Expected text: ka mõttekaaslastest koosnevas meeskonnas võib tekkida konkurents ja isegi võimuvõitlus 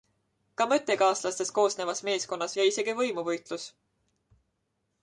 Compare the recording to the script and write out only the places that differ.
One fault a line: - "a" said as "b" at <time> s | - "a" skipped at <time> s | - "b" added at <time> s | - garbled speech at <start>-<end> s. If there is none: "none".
- "võib tekkida konkurents" skipped at 2.6 s